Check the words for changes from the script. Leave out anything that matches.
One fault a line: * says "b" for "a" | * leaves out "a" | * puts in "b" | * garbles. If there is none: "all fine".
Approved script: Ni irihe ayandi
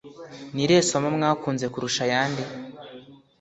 * puts in "somo mwakunze kurusha"